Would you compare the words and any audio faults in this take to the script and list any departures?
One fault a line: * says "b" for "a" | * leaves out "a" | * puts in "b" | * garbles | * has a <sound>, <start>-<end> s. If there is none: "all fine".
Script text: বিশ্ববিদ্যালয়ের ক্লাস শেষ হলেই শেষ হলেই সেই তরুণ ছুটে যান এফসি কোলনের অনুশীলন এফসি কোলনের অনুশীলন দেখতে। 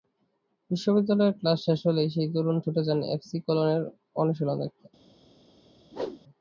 * leaves out "শেষ হলেই"
* leaves out "এফসি কোলনের অনুশীলন"
* has a whoosh, 5.9-6.2 s